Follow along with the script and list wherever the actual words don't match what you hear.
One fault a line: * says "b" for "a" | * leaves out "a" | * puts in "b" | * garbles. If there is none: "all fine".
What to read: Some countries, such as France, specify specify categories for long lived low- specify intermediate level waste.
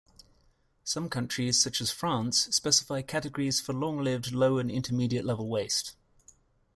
* leaves out "specify"
* says "and" for "specify"